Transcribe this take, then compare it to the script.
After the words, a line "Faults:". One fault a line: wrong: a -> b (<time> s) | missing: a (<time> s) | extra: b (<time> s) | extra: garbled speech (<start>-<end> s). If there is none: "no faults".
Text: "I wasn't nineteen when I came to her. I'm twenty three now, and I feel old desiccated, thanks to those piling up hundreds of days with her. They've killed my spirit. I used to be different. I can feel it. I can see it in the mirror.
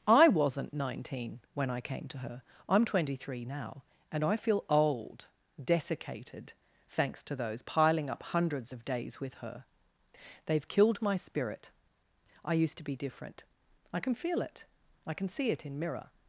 "I wasn't nineteen when I came to her. I'm twenty three now, and I feel old desiccated, thanks to those piling up hundreds of days with her. They've killed my spirit. I used to be different. I can feel it. I can see it in mirror.
Faults:
missing: the (15.8 s)